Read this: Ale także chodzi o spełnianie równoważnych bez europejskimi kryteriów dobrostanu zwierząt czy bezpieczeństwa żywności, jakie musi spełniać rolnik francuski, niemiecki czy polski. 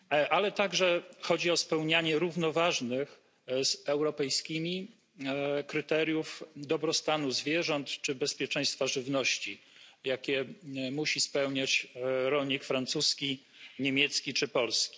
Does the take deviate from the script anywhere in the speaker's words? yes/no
yes